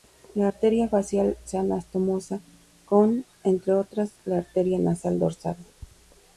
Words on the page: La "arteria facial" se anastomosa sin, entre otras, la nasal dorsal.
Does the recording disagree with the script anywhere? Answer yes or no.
yes